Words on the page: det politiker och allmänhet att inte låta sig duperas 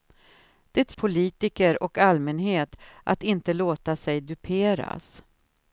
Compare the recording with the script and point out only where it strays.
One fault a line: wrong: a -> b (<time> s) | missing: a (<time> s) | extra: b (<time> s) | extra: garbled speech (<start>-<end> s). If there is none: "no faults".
no faults